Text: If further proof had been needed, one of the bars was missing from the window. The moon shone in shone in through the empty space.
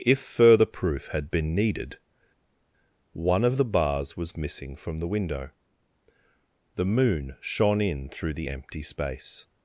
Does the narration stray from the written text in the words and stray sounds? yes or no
yes